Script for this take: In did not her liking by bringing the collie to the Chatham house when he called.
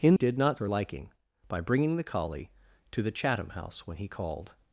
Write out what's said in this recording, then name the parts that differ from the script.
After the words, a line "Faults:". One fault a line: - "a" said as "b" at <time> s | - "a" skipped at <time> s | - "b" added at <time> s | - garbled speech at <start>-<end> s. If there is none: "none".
In did not her liking by bringing the collie to the Chatham house when he called.
Faults:
none